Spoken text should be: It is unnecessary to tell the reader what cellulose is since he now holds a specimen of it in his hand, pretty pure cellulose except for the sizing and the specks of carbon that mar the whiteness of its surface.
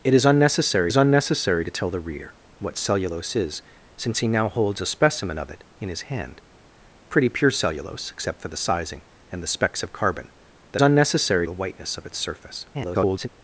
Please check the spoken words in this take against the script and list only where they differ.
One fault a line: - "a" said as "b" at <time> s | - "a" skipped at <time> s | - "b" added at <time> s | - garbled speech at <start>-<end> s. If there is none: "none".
- "is unnecessary" added at 0.9 s
- "mar" said as "unnecessary" at 10.8 s
- garbled speech at 12.7-13.3 s